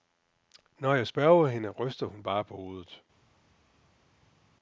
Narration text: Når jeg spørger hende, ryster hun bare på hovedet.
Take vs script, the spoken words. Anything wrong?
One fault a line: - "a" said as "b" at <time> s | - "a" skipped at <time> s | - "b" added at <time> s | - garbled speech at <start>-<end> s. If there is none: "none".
none